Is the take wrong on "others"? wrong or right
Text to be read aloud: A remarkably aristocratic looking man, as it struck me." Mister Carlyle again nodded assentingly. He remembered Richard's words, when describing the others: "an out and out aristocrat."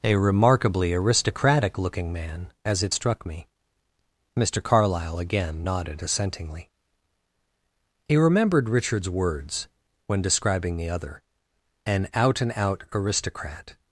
wrong